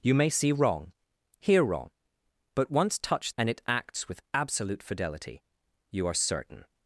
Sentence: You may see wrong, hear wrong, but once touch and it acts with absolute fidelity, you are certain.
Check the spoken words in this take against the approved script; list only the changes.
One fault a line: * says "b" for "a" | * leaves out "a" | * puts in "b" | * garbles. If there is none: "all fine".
all fine